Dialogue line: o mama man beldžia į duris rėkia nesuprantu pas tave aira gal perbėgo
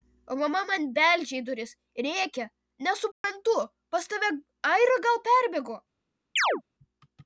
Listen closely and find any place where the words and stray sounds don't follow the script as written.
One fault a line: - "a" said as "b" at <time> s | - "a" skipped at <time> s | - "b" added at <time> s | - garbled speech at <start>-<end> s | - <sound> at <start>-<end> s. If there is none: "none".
- dropout at 3.1-3.2 s
- chirp at 6.4-6.6 s